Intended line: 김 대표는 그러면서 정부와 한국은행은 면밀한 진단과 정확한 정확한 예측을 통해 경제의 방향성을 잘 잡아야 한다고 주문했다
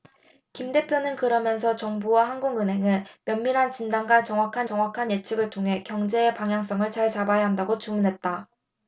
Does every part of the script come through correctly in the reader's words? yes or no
yes